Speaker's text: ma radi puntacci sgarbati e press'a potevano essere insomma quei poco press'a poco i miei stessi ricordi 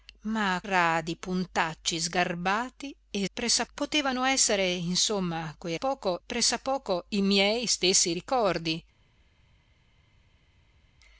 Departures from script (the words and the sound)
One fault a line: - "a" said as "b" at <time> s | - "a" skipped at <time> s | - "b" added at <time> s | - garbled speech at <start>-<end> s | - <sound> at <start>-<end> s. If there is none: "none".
none